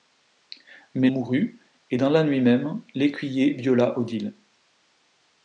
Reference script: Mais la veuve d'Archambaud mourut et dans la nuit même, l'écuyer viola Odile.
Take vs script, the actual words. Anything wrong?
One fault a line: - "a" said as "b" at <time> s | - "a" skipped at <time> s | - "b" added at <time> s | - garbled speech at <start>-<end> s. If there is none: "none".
- "la veuve d'Archambaud" skipped at 1.1 s